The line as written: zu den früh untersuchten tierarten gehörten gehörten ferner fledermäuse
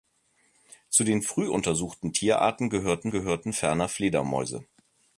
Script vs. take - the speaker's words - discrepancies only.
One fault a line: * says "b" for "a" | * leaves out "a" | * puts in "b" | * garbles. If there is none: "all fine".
all fine